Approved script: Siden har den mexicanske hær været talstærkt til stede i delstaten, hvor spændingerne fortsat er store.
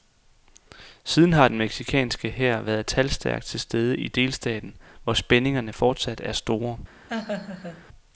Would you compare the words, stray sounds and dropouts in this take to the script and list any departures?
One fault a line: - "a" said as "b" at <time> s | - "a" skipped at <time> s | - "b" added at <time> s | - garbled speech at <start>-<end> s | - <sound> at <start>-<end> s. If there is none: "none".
- laugh at 7.1-7.8 s